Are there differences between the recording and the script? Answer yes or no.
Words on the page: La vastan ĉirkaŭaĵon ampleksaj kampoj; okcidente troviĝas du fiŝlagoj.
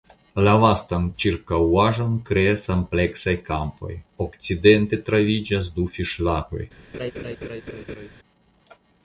yes